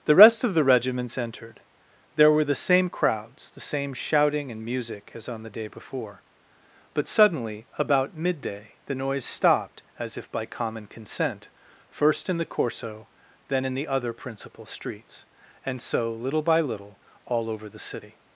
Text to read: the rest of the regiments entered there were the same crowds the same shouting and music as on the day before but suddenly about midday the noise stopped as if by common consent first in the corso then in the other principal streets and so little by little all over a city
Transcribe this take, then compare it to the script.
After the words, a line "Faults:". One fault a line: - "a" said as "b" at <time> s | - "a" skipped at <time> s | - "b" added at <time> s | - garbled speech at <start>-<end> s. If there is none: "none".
the rest of the regiments entered there were the same crowds the same shouting and music as on the day before but suddenly about midday the noise stopped as if by common consent first in the corso then in the other principal streets and so little by little all over the city
Faults:
- "a" said as "the" at 17.7 s